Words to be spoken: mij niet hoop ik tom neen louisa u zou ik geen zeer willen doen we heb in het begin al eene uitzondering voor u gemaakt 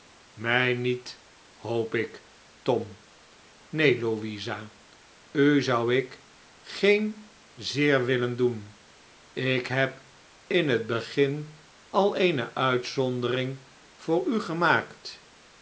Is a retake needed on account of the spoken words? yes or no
yes